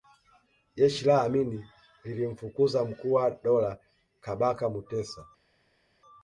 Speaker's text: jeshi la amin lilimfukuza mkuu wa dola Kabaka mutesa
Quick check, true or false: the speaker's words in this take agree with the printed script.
true